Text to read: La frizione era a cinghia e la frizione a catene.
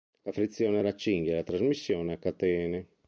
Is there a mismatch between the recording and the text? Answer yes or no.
yes